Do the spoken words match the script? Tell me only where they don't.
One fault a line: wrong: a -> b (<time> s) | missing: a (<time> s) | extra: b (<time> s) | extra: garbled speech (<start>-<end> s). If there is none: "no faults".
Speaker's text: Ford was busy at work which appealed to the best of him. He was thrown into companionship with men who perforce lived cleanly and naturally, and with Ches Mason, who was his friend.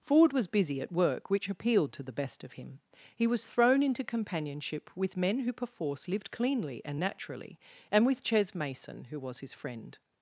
no faults